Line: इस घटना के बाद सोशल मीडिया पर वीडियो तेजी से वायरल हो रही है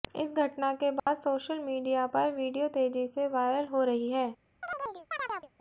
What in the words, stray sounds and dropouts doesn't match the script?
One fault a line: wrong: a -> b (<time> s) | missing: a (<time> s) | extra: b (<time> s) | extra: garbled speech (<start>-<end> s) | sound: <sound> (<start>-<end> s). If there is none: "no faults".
sound: dropout (1.0-1.1 s)
sound: chirp (4.6-5.5 s)